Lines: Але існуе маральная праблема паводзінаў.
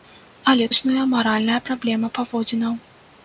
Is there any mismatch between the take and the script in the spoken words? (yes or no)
no